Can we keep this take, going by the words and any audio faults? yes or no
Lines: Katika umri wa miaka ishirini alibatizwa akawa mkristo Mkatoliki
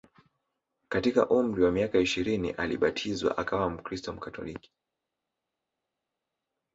yes